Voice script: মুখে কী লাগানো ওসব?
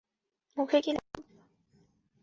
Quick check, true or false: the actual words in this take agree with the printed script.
false